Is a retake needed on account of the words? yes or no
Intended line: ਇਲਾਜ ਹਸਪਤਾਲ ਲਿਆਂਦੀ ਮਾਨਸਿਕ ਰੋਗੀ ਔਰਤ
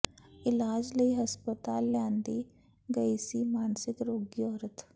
yes